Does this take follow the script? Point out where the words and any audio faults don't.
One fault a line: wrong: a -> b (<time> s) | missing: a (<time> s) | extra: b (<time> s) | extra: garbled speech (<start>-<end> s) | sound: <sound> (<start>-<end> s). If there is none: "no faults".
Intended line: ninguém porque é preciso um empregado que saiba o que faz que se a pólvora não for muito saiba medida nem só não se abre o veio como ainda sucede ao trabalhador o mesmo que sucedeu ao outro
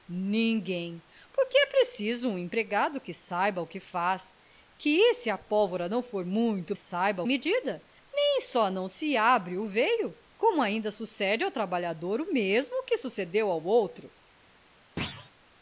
sound: thud (15.0-15.3 s)